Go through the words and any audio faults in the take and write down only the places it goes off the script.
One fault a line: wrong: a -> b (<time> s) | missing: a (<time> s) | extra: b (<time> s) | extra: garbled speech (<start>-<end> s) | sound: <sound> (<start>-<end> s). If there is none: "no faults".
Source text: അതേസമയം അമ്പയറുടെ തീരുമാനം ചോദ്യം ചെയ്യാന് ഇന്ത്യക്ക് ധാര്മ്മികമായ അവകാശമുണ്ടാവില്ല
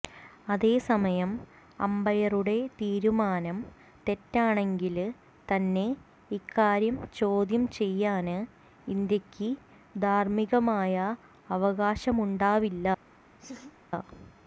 extra: തെറ്റാണെങ്കില് തന്നെ ഇക്കാര്യം (4.1 s)
sound: laugh (13.4-13.8 s)